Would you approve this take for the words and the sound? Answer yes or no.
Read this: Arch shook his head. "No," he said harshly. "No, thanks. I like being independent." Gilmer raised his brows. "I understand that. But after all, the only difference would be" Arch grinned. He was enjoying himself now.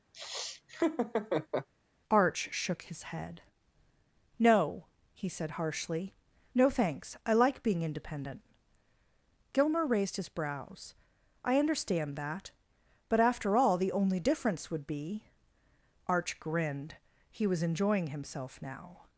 no